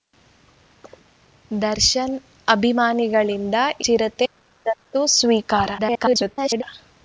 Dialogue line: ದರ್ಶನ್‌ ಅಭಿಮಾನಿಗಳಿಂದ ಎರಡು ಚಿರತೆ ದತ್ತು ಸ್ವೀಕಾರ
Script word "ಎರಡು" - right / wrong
wrong